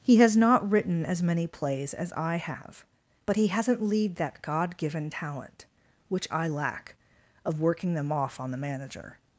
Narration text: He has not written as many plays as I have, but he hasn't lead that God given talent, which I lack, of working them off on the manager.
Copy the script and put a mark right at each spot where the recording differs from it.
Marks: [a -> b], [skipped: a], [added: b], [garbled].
He has not written as many plays as I have, but he hasn't lead that God given talent, which I lack, of working them off on the manager.